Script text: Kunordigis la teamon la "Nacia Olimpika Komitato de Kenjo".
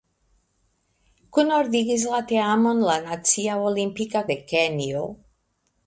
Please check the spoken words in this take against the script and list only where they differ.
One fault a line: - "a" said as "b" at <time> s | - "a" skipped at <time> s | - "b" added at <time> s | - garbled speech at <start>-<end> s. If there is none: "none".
- "Komitato" skipped at 4.3 s